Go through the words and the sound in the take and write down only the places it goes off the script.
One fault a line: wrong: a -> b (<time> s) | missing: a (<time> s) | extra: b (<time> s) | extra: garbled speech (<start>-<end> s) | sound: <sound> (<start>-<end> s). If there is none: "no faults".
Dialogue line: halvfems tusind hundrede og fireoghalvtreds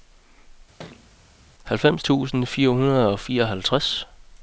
sound: thud (0.8-1.1 s)
extra: fire (2.5 s)